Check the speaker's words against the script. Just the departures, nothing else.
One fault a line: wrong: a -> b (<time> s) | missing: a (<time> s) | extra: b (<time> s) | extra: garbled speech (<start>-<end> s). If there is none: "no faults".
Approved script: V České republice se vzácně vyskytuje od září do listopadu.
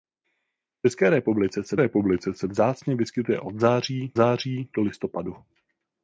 extra: republice se (1.8 s)
extra: září (4.1 s)